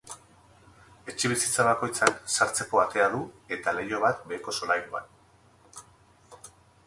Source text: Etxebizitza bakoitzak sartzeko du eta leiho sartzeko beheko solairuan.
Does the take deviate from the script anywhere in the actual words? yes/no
yes